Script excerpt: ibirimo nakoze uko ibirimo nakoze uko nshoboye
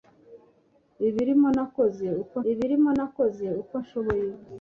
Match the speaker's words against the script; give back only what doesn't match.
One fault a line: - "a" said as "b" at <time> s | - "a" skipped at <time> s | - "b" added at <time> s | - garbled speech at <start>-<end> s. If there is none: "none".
none